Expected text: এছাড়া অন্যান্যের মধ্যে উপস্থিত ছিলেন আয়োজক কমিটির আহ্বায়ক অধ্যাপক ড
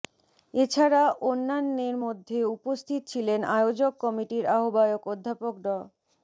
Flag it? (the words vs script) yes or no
no